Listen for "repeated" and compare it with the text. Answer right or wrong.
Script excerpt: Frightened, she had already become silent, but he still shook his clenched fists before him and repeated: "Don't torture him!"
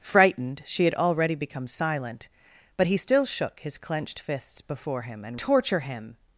wrong